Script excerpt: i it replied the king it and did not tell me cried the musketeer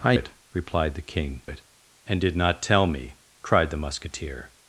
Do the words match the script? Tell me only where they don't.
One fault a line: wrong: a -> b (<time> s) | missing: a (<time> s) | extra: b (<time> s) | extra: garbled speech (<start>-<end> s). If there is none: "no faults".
no faults